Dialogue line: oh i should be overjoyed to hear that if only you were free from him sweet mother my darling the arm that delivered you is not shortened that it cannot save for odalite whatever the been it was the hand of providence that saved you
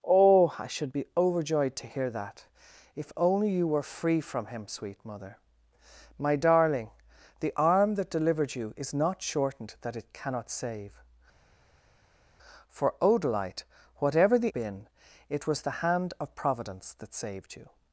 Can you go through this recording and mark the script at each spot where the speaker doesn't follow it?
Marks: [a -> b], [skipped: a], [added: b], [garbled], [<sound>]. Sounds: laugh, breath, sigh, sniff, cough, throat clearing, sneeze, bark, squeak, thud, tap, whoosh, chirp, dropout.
oh i should be overjoyed to hear that if only you were free from him sweet mother my darling the arm that delivered you is not shortened that it cannot save for odalite whatever the been it was the hand of providence that saved you